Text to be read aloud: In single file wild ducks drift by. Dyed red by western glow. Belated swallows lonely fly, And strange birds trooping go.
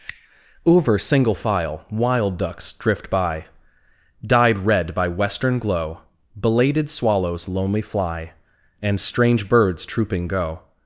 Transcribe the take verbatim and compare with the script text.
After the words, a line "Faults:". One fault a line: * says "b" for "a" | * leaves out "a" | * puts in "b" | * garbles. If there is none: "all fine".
Over single file wild ducks drift by. Dyed red by western glow. Belated swallows lonely fly, And strange birds trooping go.
Faults:
* says "Over" for "In"